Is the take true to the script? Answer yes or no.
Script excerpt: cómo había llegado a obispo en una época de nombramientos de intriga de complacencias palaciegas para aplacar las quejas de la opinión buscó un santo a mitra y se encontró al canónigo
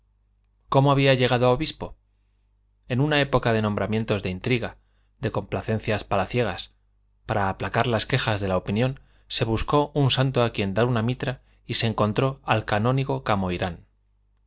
no